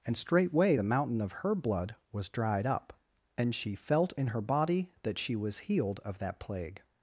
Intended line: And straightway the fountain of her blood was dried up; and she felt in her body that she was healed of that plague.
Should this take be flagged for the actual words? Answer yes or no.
yes